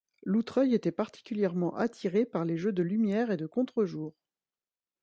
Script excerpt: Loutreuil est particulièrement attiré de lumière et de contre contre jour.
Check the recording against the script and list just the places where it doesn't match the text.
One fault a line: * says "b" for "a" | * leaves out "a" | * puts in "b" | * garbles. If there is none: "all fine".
* says "était" for "est"
* puts in "par les jeux"
* leaves out "contre"